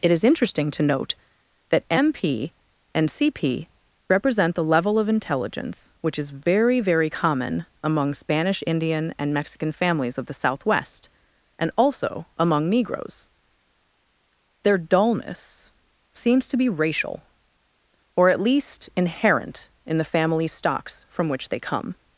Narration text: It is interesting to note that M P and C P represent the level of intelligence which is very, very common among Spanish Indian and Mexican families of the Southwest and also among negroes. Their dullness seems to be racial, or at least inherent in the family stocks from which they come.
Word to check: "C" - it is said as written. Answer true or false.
true